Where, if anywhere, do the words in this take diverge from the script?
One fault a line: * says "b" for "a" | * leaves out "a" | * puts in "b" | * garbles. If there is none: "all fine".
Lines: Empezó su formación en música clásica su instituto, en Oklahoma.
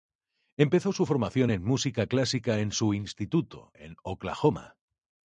* puts in "en"